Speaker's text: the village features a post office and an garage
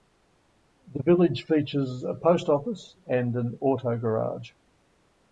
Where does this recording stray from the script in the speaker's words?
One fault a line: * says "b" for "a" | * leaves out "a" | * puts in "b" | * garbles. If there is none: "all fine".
* puts in "auto"